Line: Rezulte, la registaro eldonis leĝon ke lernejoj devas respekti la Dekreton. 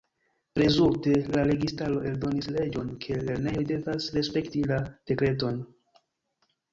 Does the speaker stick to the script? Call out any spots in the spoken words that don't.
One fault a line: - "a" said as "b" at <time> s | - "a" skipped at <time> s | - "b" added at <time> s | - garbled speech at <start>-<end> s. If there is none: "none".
none